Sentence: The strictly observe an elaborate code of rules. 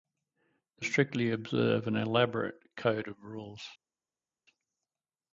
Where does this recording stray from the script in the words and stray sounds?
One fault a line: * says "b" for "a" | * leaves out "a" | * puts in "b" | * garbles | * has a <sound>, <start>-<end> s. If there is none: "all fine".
all fine